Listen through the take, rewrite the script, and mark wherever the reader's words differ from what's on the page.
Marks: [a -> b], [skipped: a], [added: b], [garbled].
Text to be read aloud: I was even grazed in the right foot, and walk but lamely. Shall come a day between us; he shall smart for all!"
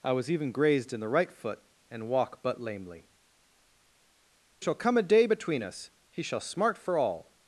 I was even grazed in the right foot, and walk but lamely. Shall come a day between us; he shall smart for all!"